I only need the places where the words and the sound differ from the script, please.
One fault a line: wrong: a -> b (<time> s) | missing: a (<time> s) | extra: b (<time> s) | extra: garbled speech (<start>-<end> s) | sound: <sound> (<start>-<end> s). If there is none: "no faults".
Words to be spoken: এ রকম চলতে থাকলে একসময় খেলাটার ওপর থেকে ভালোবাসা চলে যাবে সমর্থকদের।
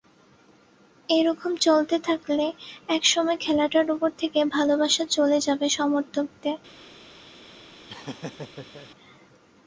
sound: laugh (7.9-8.9 s)